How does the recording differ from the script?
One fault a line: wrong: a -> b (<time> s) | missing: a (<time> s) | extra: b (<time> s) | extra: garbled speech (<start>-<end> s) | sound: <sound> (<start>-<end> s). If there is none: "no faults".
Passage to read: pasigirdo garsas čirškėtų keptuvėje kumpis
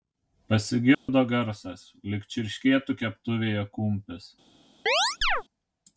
sound: dropout (0.9-1.1 s)
extra: lyg (2.1 s)
sound: chirp (4.9-5.4 s)